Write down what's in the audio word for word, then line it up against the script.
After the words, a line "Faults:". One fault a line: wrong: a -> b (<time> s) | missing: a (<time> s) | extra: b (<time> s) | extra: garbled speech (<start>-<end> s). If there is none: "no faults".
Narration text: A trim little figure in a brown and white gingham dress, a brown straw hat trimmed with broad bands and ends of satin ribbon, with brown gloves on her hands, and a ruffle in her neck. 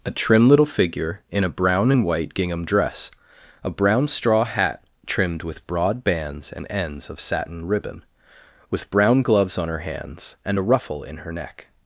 A trim little figure in a brown and white gingham dress, a brown straw hat trimmed with broad bands and ends of satin ribbon, with brown gloves on her hands, and a ruffle in her neck.
Faults:
no faults